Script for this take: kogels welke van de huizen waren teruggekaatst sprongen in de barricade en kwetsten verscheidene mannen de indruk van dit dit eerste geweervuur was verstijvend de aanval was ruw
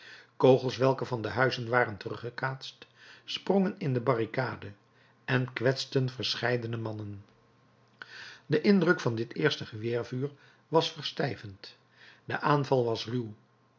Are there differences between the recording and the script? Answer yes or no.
yes